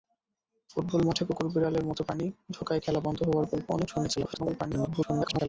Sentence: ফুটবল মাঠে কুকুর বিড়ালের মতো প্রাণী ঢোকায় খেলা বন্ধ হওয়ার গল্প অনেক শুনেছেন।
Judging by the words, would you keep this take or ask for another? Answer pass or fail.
fail